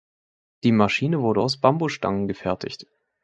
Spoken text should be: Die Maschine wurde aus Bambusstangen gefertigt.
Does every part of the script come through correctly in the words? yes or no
yes